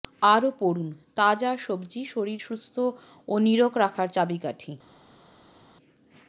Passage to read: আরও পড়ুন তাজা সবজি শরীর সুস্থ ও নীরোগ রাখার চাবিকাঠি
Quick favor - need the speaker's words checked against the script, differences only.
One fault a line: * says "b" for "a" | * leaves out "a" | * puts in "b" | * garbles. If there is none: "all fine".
all fine